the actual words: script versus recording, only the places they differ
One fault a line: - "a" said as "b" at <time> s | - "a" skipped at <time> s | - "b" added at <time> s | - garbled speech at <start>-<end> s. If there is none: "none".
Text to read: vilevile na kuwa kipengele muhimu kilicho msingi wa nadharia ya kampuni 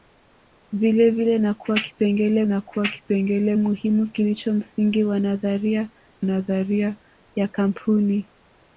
- "na kuwa kipengele" added at 2.4 s
- "nadharia" added at 6.2 s